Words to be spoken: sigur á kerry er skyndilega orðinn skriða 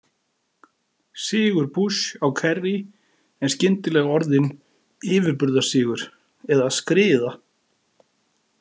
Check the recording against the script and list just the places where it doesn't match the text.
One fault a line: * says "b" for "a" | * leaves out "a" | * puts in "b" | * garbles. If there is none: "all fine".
* puts in "bush"
* puts in "yfirburðasigur eða"